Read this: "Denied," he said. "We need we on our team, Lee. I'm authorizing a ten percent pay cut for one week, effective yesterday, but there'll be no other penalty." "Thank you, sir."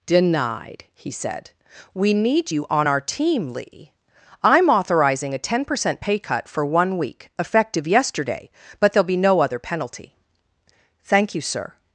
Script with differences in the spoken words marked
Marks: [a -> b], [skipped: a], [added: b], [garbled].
"Denied," he said. "We need [we -> you] on our team, Lee. I'm authorizing a ten percent pay cut for one week, effective yesterday, but there'll be no other penalty." "Thank you, sir."